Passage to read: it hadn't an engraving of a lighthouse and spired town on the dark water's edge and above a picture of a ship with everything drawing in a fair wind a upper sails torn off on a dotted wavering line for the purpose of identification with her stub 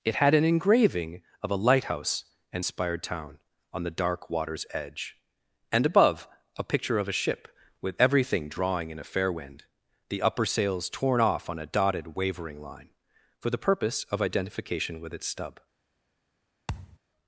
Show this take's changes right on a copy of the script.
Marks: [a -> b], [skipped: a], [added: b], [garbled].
it [hadn't -> had] an engraving of a lighthouse and spired town on the dark water's edge and above a picture of a ship with everything drawing in a fair wind [a -> the] upper sails torn off on a dotted wavering line for the purpose of identification with [her -> its] stub